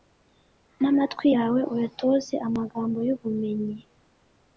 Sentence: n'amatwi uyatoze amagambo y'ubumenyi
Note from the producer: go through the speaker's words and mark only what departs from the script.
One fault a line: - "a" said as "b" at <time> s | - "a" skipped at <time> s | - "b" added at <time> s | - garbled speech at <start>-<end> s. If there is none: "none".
- "yawe" added at 1.3 s